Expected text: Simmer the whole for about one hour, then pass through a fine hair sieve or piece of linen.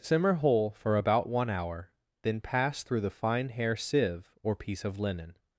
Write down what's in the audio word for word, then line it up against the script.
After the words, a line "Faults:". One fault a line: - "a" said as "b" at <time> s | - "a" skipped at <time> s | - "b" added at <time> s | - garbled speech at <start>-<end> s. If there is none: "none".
Simmer whole for about one hour, then pass through the fine hair sieve or piece of linen.
Faults:
- "the" skipped at 0.3 s
- "a" said as "the" at 3.0 s